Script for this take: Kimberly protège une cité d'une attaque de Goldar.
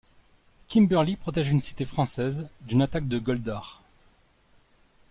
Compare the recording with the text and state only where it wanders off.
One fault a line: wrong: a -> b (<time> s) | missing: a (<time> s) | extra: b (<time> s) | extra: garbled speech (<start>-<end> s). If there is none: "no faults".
extra: française (1.9 s)